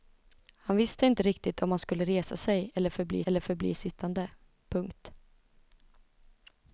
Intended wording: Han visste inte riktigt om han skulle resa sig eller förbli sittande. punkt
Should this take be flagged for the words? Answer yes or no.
yes